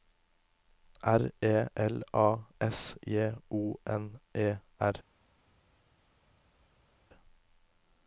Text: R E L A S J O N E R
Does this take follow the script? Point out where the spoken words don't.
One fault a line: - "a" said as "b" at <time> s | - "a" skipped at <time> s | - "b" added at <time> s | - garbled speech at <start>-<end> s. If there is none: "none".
none